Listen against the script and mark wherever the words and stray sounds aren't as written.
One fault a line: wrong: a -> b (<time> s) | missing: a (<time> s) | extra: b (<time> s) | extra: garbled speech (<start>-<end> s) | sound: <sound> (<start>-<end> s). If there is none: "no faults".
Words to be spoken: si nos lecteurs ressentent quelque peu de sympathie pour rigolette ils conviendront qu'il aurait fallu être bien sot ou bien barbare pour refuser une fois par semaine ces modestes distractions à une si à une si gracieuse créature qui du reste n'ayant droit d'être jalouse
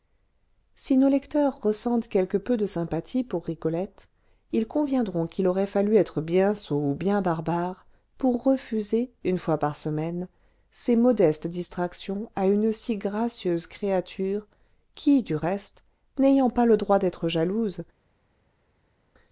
missing: à une si (13.0 s)
extra: pas le (16.5 s)